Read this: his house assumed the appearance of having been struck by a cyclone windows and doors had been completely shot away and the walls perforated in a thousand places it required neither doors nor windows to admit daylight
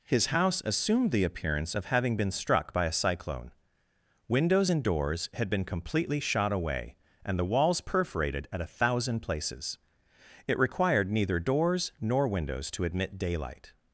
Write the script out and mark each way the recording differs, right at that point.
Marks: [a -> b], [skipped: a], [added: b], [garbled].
his house assumed the appearance of having been struck by a cyclone windows and doors had been completely shot away and the walls perforated [in -> at] a thousand places it required neither doors nor windows to admit daylight